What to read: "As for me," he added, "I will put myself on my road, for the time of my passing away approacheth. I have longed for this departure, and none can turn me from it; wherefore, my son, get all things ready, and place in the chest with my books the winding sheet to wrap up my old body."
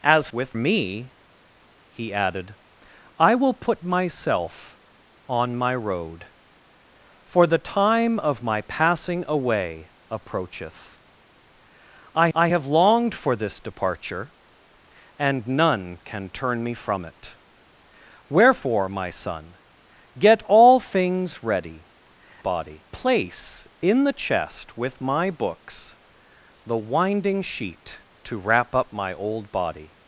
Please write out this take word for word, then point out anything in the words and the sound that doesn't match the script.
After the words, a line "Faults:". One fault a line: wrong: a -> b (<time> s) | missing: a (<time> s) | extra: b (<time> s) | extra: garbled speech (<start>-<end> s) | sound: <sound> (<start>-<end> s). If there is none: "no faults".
"As with me," he added, "I will put myself on my road, for the time of my passing away approacheth. I I have longed for this departure, and none can turn me from it; wherefore, my son, get all things ready, body place in the chest with my books the winding sheet to wrap up my old body."
Faults:
wrong: for -> with (0.3 s)
extra: I (12.3 s)
wrong: and -> body (22.4 s)